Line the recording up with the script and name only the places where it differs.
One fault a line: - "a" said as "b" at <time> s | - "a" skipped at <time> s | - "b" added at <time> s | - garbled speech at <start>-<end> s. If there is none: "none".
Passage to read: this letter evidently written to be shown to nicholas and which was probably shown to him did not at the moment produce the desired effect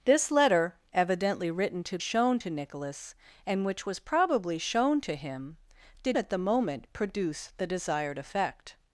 - "be" skipped at 2.0 s
- "not" skipped at 6.2 s